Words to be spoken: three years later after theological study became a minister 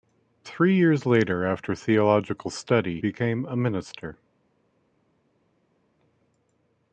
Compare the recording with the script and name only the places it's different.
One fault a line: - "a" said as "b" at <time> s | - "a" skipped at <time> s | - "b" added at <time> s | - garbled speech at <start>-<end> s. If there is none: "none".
none